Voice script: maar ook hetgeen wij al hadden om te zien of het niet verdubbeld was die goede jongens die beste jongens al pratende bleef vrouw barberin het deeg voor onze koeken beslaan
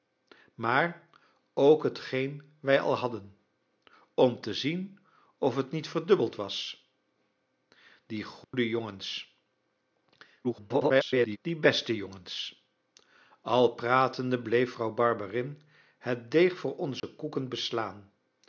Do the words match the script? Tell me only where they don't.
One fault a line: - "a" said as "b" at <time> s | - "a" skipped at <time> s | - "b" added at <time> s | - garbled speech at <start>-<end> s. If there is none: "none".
- garbled speech at 10.4-11.4 s